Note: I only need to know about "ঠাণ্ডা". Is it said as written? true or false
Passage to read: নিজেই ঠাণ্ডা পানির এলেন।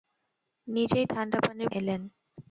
true